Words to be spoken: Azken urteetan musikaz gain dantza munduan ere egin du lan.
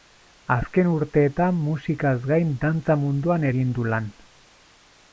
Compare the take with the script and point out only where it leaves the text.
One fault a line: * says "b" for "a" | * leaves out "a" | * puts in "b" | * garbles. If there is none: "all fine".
* leaves out "ere"